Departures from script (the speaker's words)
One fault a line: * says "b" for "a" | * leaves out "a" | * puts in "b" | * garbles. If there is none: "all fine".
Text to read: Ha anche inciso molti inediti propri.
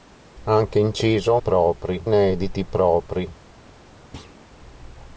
* says "propri" for "molti"